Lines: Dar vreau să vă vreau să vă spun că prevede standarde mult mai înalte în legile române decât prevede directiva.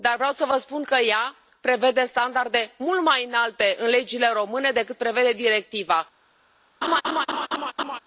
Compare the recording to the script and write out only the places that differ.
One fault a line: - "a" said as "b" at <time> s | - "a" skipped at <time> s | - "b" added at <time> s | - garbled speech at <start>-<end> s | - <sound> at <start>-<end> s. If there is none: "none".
- "vreau să vă" skipped at 0.6 s
- "ea" added at 1.0 s
- laugh at 6.8-8.0 s